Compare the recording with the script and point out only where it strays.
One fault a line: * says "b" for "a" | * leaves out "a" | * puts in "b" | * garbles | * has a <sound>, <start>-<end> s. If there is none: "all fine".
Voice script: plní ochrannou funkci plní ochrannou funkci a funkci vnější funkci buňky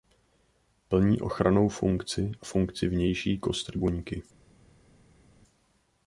* leaves out "plní ochrannou funkci"
* says "kostry" for "funkci"